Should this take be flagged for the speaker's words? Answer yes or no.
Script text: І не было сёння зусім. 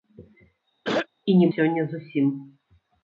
yes